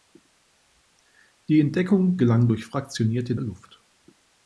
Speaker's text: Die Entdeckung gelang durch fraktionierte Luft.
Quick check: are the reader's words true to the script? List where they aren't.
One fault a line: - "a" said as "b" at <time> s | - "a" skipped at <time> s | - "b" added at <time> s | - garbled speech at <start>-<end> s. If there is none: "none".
none